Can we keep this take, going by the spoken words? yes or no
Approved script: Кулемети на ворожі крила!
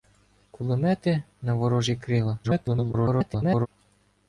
no